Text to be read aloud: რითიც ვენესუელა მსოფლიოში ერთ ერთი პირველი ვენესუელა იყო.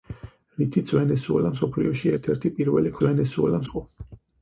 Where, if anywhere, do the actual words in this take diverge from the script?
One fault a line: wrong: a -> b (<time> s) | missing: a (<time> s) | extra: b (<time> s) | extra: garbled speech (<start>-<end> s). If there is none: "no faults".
no faults